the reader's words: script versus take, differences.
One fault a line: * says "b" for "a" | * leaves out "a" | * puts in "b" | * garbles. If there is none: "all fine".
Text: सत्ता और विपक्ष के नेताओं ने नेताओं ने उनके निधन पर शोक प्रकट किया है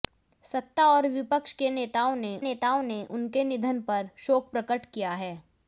all fine